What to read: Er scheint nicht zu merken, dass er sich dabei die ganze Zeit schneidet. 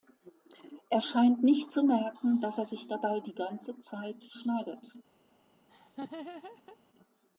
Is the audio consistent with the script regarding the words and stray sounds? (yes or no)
no